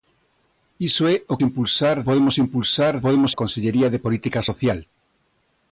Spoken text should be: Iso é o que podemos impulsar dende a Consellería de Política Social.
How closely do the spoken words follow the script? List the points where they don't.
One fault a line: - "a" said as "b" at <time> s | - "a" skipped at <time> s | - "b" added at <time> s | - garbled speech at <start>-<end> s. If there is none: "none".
- "que" said as "impulsar" at 1.5 s
- "dende" said as "podemos" at 3.1 s